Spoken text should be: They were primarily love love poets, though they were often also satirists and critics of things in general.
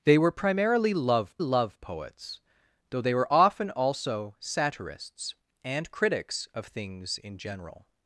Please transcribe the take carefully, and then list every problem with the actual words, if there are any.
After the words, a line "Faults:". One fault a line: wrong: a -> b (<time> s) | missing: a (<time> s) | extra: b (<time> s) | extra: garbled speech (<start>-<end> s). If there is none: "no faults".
They were primarily love love poets, though they were often also satirists and critics of things in general.
Faults:
no faults